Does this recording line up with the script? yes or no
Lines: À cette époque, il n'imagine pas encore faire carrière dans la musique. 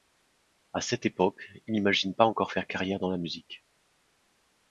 yes